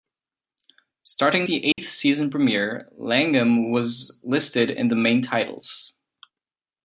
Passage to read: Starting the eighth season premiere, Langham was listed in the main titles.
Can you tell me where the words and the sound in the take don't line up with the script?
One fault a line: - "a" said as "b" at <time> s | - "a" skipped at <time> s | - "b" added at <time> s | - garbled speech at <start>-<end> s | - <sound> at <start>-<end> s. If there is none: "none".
- dropout at 1.7-1.8 s